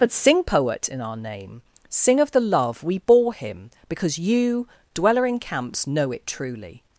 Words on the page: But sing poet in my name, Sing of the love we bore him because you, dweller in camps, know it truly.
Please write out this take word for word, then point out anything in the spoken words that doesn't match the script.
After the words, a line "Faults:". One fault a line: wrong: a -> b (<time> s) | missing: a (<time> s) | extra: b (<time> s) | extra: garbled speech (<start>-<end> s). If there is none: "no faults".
But sing poet in our name, Sing of the love we bore him because you, dweller in camps, know it truly.
Faults:
wrong: my -> our (1.0 s)